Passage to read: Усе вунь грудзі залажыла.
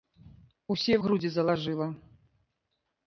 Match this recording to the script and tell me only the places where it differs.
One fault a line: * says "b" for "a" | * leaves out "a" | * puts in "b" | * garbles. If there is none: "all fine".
* leaves out "вунь"